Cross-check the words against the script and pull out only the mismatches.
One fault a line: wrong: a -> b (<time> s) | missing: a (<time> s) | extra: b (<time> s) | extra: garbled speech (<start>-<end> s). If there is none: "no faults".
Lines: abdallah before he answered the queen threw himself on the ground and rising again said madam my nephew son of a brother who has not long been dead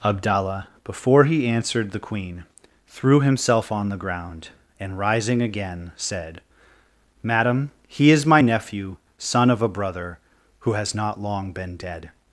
extra: he is (7.9 s)